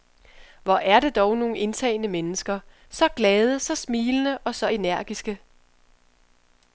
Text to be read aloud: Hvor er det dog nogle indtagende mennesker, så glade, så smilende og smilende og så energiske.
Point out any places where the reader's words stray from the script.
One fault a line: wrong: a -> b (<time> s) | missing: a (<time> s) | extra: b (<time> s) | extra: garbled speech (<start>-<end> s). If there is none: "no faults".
missing: smilende og (4.6 s)